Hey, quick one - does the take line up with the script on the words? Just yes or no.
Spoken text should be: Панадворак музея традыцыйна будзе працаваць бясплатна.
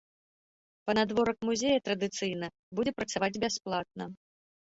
yes